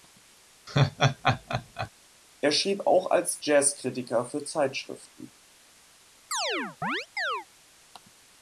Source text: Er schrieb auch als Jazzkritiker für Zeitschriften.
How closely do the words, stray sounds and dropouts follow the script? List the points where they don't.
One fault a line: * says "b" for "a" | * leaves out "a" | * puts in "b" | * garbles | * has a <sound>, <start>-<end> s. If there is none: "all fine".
* has a laugh, 0.7-1.9 s
* has a chirp, 6.3-7.5 s